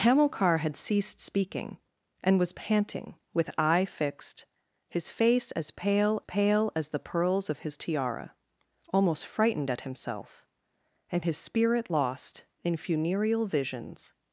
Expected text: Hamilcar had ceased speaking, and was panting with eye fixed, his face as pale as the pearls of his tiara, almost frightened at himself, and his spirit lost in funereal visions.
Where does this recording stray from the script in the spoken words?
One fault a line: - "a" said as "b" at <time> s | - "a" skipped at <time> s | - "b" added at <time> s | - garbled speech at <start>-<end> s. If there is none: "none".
- "pale" added at 6.2 s